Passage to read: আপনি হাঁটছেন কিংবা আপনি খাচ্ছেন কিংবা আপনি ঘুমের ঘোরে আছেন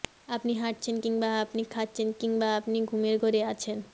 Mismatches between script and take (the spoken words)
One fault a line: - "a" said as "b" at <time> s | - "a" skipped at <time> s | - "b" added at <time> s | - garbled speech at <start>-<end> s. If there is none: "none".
none